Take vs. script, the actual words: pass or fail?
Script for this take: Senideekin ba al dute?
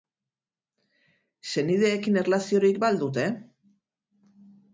fail